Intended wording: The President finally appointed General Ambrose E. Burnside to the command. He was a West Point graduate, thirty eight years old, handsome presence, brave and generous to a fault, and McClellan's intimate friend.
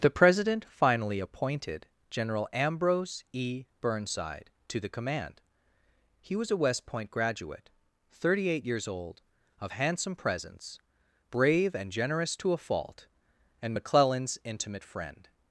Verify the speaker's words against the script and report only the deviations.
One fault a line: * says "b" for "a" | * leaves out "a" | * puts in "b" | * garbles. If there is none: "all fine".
* puts in "of"